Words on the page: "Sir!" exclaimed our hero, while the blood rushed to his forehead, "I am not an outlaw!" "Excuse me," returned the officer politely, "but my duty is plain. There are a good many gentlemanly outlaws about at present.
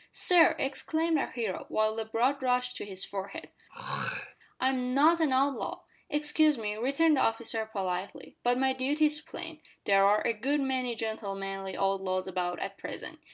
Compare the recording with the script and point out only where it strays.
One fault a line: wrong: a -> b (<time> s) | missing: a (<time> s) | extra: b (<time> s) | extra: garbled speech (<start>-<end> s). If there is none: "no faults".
no faults